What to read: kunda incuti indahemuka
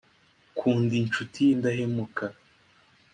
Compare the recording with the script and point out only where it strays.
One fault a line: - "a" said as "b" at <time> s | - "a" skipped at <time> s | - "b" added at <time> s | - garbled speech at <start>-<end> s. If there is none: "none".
none